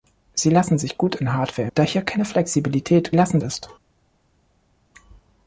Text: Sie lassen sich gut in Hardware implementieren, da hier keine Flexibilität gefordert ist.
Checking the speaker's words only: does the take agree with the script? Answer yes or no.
no